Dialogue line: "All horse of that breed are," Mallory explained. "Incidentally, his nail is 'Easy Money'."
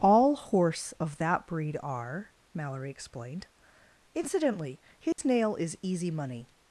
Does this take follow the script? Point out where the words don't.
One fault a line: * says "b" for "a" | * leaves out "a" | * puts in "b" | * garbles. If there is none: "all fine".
all fine